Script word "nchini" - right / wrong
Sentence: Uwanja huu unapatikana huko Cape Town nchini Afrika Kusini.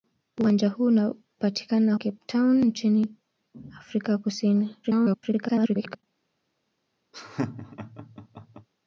right